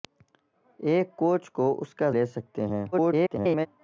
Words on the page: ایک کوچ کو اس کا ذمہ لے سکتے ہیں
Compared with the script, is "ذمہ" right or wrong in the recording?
wrong